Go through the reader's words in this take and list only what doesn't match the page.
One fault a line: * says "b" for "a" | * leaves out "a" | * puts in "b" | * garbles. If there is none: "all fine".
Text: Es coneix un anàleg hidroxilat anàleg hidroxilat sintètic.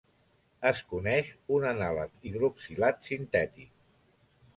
* leaves out "anàleg hidroxilat"